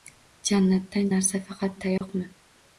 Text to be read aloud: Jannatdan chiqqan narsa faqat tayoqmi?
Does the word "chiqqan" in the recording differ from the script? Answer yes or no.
yes